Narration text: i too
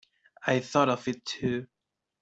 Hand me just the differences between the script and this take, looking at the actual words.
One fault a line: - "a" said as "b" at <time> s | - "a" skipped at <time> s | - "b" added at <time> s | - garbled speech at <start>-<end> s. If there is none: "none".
- "thought of it" added at 0.6 s